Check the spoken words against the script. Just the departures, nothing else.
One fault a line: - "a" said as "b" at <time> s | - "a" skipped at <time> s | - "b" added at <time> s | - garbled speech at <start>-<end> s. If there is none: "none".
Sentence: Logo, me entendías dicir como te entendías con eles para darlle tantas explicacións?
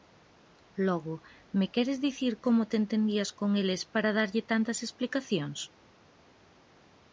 - "entendías" said as "queres" at 1.8 s